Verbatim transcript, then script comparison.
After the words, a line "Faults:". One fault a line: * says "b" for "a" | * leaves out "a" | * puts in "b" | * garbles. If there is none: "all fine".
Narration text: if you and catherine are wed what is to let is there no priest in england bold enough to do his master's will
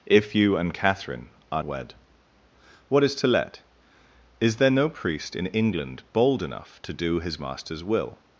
if you and catherine are wed what is to let is there no priest in england bold enough to do his master's will
Faults:
all fine